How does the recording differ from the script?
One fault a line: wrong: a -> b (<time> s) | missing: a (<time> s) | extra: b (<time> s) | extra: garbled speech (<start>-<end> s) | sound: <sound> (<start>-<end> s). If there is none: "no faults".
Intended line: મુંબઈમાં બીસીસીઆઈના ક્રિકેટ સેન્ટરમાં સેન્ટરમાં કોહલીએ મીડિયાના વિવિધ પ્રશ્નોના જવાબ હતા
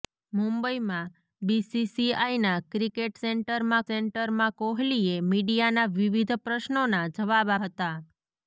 no faults